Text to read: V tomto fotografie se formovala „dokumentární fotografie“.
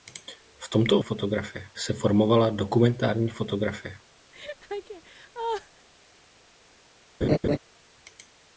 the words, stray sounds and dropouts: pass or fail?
fail